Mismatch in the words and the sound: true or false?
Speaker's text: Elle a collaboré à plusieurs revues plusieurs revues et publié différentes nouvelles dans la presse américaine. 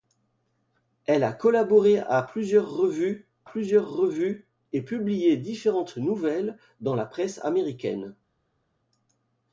false